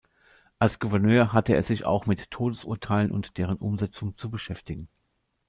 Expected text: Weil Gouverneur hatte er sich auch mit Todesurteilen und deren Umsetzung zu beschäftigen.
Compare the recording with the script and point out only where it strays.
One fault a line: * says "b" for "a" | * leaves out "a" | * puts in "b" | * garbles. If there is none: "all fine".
* says "Als" for "Weil"